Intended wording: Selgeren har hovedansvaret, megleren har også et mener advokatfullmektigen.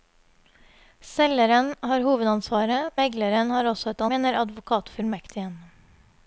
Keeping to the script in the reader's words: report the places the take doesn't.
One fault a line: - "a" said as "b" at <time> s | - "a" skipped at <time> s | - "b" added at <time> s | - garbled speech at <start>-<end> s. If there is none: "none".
none